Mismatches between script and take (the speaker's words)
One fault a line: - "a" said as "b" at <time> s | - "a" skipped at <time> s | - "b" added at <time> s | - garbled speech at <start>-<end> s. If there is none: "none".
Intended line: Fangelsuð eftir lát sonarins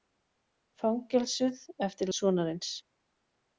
- "lát" skipped at 2.1 s